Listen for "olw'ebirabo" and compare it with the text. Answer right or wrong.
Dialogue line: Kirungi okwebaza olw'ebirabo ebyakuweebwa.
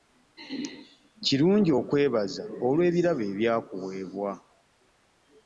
right